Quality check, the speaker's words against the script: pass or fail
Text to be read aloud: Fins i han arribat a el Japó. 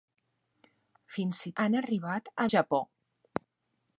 pass